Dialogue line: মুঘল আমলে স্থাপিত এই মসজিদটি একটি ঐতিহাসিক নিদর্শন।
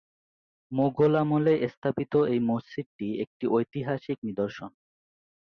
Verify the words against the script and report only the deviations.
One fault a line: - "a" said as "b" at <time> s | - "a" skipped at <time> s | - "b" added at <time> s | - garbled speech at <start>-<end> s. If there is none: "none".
none